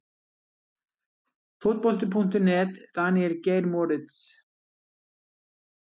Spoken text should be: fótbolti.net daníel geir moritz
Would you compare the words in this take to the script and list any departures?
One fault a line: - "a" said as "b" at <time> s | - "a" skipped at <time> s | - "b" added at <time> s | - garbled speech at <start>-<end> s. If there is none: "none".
none